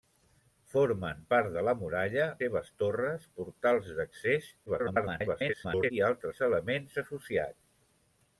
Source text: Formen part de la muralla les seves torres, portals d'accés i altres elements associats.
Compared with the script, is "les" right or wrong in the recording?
wrong